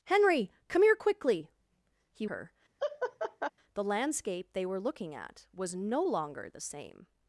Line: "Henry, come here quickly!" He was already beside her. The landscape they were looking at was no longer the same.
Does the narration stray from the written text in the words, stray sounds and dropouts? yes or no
yes